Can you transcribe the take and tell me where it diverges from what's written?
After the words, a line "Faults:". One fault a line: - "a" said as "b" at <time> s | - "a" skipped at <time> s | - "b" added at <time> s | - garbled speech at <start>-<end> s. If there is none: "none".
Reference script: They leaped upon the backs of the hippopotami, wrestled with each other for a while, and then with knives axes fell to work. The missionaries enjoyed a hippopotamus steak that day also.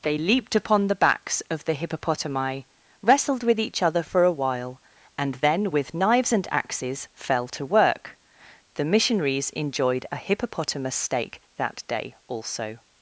They leaped upon the backs of the hippopotami, wrestled with each other for a while, and then with knives and axes fell to work. The missionaries enjoyed a hippopotamus steak that day also.
Faults:
- "and" added at 6.3 s